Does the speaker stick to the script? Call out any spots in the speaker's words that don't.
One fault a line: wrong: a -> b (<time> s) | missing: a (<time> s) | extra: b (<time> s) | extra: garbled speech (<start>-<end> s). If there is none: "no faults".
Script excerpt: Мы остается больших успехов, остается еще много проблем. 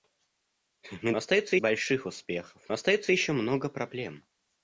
no faults